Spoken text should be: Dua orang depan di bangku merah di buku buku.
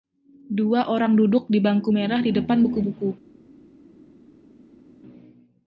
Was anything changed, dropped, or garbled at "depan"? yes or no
yes